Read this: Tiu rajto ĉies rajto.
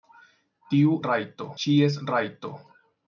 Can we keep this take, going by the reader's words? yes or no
yes